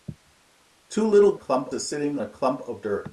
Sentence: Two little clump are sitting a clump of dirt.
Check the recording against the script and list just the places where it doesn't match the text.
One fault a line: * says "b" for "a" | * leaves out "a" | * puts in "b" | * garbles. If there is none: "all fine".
all fine